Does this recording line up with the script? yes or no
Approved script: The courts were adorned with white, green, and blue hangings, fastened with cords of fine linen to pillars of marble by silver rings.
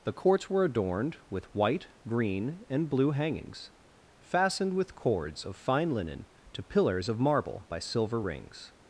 yes